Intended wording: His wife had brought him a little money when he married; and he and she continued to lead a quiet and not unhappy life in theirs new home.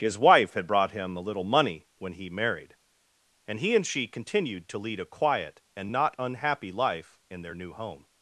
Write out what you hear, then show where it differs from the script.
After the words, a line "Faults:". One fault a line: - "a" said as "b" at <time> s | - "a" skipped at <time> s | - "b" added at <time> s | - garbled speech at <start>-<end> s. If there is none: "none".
His wife had brought him a little money when he married; and he and she continued to lead a quiet and not unhappy life in their new home.
Faults:
- "theirs" said as "their" at 7.4 s